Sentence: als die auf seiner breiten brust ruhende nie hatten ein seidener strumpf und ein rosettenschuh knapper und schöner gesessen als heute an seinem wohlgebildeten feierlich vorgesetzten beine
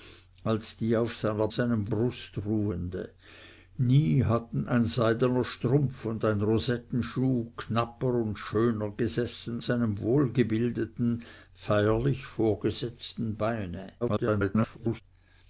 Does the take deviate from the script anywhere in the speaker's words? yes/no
yes